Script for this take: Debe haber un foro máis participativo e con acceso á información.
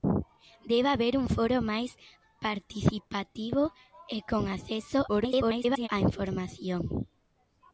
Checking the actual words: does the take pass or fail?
fail